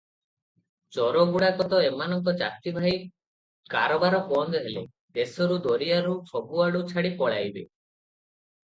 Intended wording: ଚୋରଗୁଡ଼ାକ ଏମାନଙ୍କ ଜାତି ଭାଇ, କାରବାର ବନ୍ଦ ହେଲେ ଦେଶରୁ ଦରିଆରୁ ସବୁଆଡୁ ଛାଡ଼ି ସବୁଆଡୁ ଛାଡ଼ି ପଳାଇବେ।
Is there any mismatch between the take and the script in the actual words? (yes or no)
yes